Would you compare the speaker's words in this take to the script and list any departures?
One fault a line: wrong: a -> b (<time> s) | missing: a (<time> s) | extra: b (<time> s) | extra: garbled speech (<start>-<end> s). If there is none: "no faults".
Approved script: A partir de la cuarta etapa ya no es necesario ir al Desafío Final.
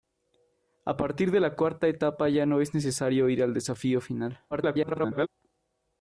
extra: garbled speech (4.5-5.3 s)